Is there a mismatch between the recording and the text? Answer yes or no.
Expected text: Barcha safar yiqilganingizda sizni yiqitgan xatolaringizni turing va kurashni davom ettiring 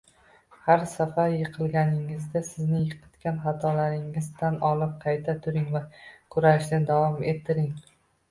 yes